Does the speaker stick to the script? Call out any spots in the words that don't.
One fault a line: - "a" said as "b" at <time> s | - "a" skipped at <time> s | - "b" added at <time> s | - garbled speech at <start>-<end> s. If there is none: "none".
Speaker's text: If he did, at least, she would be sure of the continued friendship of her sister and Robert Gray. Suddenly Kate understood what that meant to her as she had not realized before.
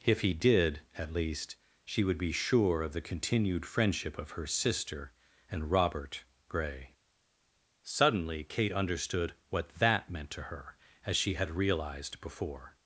- "not" skipped at 11.5 s